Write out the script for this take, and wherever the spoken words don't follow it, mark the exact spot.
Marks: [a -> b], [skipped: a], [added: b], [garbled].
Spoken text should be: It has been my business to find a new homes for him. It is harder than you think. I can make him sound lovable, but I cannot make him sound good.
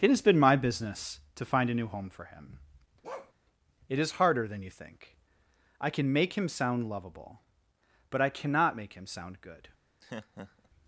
It has been my business to find a new [homes -> home] for him. It is harder than you think. I can make him sound lovable, but I cannot make him sound good.